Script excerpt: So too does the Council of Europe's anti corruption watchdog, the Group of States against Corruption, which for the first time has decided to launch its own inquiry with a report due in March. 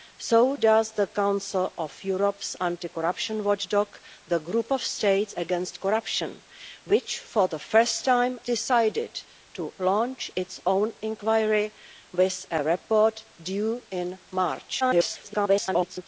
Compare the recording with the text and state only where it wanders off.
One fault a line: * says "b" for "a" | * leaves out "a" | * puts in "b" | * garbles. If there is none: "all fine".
* leaves out "too"
* leaves out "has"
* garbles